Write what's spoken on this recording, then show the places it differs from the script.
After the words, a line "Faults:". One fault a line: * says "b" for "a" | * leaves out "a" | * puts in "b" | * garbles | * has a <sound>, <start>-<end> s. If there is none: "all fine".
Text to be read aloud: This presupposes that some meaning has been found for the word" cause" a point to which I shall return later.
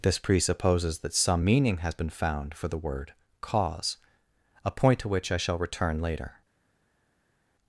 This presupposes that some meaning has been found for the word" cause" a point to which I shall return later.
Faults:
all fine